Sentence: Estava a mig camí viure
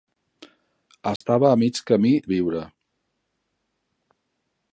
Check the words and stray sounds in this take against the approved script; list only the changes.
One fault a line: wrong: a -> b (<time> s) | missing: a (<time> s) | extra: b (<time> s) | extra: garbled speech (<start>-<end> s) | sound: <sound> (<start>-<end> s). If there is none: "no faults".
sound: dropout (1.2-1.2 s)